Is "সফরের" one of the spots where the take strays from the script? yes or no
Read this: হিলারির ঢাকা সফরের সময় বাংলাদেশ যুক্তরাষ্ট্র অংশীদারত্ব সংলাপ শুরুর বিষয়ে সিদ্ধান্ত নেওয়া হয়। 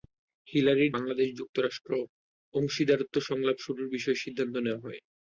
yes